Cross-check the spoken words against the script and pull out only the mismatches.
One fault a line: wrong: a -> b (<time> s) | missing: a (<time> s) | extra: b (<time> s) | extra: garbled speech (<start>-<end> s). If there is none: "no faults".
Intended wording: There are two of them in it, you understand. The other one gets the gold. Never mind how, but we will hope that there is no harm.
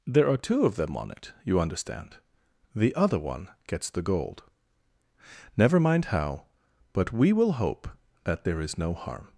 wrong: in -> on (1.0 s)